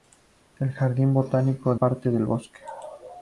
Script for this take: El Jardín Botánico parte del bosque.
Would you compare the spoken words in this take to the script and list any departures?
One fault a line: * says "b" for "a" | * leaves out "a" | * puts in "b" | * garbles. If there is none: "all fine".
all fine